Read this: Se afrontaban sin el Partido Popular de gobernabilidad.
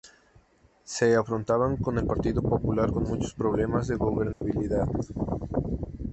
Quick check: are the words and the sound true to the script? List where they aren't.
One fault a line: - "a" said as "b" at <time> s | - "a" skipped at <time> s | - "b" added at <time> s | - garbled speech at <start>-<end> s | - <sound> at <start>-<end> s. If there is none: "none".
- "sin" said as "con" at 1.8 s
- "con muchos problemas" added at 2.9 s
- dropout at 4.3-4.4 s